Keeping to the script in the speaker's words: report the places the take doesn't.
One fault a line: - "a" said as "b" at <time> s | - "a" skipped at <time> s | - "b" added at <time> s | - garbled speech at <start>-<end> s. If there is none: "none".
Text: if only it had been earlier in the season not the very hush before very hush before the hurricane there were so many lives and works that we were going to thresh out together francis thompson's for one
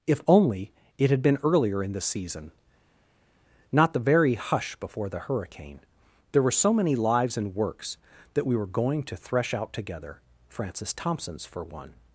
- "very hush before" skipped at 5.1 s